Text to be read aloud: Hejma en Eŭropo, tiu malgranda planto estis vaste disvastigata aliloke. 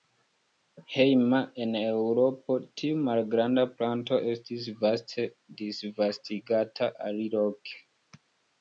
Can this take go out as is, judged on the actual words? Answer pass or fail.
pass